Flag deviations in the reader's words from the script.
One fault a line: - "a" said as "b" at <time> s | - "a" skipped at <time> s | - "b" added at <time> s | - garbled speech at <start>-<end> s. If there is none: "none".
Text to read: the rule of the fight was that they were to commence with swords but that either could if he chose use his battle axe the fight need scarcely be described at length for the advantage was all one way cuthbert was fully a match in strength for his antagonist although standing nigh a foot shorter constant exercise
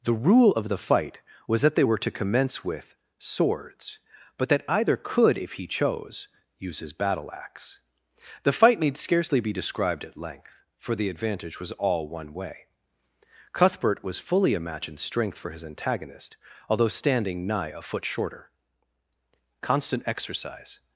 none